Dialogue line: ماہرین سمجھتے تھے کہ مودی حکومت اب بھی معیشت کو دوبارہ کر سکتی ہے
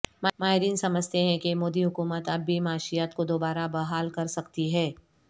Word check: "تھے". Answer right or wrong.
wrong